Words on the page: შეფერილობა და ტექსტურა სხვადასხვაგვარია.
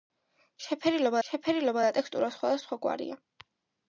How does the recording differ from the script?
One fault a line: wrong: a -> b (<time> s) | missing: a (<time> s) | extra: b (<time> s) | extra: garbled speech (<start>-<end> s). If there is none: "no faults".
extra: შეფერილობა (1.3 s)